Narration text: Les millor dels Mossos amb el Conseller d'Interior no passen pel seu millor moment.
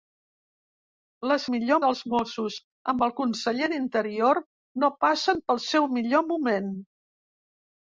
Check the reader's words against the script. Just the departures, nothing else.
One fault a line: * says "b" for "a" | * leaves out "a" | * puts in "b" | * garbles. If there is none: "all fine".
all fine